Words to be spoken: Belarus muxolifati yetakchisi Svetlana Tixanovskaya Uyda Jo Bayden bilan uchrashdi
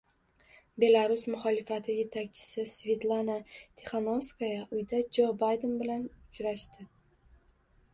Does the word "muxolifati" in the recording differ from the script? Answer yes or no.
no